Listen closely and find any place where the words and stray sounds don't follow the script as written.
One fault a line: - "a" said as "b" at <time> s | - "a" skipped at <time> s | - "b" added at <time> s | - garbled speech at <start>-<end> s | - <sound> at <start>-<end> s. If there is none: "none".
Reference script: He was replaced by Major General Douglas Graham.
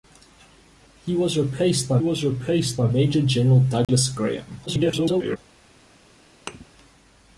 - "was replaced by" added at 2.0 s
- dropout at 3.8-3.9 s
- garbled speech at 4.7-5.4 s
- thud at 6.5-6.7 s